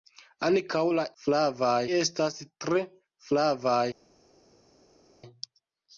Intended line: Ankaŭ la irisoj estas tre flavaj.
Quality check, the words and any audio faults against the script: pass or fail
fail